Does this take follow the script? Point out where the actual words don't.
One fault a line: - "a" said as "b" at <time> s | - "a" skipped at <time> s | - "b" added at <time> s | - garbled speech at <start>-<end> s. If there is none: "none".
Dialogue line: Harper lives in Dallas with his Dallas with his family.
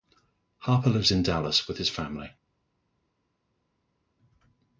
- "Dallas with his" skipped at 1.9 s